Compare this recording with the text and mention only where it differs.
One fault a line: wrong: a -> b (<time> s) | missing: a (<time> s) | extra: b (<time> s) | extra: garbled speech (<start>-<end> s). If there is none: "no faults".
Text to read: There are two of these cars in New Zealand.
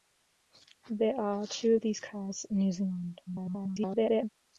extra: garbled speech (3.3-4.3 s)